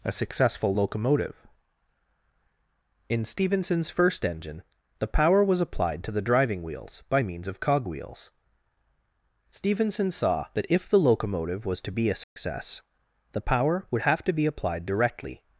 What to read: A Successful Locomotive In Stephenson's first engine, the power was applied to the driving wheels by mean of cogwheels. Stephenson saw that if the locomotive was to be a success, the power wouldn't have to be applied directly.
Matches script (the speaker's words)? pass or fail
fail